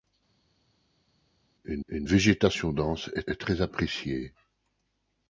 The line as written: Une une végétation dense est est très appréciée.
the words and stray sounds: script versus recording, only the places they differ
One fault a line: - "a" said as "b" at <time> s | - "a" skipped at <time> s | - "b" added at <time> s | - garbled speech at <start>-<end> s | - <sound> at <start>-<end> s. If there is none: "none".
none